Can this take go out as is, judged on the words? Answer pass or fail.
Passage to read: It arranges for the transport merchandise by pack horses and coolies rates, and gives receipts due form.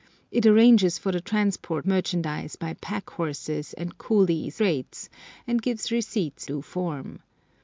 pass